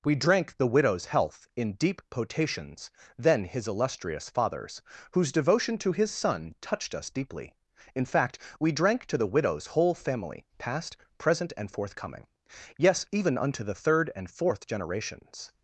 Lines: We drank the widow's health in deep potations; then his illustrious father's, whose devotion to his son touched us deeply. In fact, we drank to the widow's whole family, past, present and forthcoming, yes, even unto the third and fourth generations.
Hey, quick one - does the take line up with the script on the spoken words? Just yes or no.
yes